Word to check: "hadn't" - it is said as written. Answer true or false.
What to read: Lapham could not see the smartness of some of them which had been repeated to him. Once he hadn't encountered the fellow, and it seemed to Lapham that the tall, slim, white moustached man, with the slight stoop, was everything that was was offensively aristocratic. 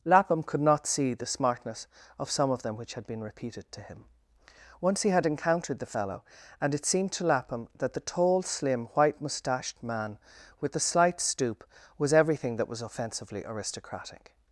false